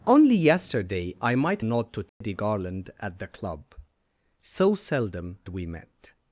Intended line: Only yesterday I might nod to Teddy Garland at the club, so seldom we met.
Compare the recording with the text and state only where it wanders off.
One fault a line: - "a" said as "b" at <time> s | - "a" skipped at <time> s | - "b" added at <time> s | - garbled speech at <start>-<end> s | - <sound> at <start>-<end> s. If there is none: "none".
- dropout at 2.1-2.2 s